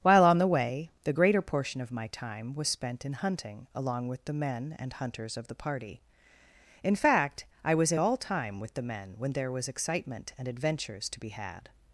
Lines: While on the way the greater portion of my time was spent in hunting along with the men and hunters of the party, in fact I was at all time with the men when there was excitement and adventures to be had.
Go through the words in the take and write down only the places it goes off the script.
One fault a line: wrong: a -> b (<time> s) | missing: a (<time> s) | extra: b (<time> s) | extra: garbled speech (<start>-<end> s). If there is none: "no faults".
no faults